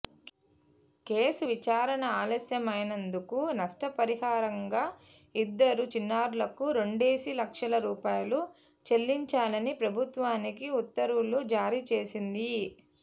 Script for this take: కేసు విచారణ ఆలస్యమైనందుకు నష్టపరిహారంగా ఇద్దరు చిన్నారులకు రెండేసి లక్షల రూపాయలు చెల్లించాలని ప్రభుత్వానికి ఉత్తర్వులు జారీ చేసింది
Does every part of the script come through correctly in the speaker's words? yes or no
yes